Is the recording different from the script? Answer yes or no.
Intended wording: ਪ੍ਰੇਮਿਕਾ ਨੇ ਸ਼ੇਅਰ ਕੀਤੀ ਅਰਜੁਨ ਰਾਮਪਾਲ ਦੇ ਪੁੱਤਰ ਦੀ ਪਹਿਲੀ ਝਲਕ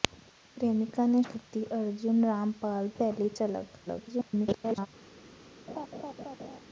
yes